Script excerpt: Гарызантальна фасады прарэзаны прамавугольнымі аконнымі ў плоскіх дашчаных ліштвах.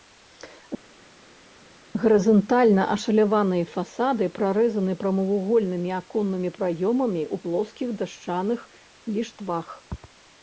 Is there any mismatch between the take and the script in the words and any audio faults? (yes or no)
yes